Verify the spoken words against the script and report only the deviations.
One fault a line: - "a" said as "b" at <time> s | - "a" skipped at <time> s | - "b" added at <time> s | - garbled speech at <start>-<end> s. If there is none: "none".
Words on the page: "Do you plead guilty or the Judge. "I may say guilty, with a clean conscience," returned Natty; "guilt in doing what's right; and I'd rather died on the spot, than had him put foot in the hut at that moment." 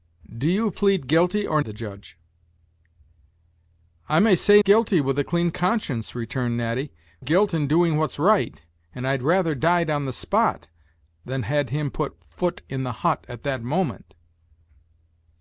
none